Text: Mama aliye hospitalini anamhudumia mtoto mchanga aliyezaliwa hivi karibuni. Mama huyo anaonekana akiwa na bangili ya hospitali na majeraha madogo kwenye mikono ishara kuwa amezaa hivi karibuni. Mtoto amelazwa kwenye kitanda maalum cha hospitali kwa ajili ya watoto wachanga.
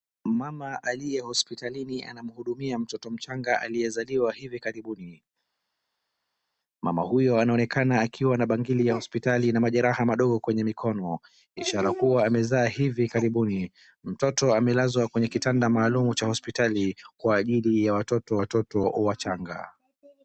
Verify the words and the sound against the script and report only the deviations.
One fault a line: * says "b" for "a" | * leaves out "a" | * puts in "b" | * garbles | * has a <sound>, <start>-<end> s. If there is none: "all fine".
* puts in "watoto"